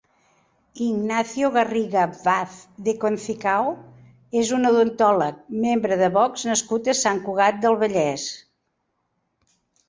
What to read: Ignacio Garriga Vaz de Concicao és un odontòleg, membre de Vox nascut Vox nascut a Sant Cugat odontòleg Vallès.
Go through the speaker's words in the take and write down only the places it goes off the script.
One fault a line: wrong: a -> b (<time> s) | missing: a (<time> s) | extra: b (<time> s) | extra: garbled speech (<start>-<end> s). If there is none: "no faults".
missing: Vox nascut (6.9 s)
wrong: odontòleg -> del (7.7 s)